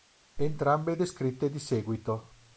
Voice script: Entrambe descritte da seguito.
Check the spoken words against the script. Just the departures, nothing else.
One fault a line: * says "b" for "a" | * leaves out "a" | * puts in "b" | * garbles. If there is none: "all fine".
* says "di" for "da"